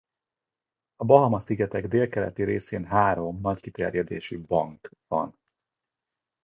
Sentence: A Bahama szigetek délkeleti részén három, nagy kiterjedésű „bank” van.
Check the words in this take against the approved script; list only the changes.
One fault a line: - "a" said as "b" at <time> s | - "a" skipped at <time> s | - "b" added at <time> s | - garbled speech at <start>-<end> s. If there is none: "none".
none